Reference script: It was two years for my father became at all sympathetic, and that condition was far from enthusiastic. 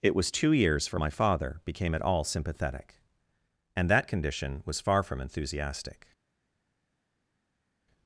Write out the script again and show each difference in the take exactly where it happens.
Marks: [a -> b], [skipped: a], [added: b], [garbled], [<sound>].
It was two years for my father became at all sympathetic, and that condition was far from enthusiastic.